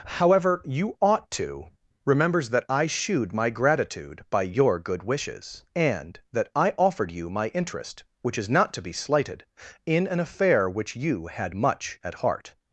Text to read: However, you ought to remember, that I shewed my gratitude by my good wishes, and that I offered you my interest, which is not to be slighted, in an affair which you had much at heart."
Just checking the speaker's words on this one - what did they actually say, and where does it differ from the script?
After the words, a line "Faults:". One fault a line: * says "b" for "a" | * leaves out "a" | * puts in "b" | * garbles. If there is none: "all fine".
However, you ought to remembers, that I shewed my gratitude by your good wishes, and that I offered you my interest, which is not to be slighted, in an affair which you had much at heart."
Faults:
* says "remembers" for "remember"
* says "your" for "my"